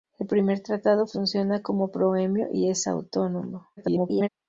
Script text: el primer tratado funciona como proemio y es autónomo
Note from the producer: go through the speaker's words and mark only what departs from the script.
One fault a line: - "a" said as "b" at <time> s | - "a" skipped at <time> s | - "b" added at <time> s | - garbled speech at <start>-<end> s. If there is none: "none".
- garbled speech at 3.8-4.3 s